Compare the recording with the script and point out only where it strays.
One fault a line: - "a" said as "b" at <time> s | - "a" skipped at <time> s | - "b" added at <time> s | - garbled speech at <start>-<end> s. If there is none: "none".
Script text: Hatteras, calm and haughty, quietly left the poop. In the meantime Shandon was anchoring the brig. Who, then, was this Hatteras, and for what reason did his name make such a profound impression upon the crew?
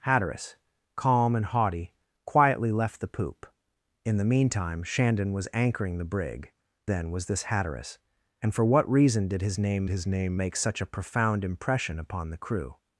- "Who" skipped at 6.5 s
- "his name" added at 9.9 s